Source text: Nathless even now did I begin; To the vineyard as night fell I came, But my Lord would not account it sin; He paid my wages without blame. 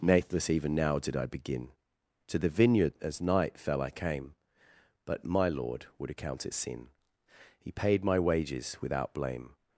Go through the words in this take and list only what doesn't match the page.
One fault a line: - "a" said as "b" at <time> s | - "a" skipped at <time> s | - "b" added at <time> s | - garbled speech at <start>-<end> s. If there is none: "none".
- "not" skipped at 6.1 s